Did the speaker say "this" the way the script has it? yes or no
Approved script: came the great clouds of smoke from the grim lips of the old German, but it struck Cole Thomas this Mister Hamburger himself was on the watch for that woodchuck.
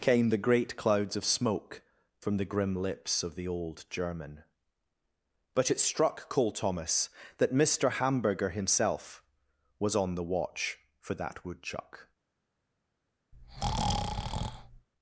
no